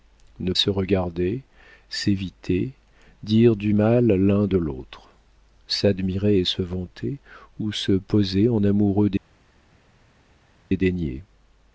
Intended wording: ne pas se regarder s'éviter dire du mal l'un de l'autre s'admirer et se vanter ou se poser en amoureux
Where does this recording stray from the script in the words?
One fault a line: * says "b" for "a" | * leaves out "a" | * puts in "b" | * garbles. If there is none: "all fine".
* leaves out "pas"